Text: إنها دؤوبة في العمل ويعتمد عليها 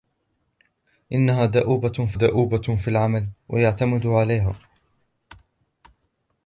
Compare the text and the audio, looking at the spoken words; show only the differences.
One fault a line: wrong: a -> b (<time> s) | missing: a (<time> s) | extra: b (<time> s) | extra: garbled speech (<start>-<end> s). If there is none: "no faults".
extra: دؤوبة في (2.1 s)